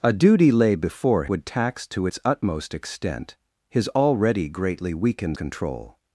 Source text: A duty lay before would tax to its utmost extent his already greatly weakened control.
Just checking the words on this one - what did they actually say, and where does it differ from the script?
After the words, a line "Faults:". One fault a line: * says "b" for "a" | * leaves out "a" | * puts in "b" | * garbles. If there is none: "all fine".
A duty lay before would tax to its utmost extent his already greatly weakened control.
Faults:
all fine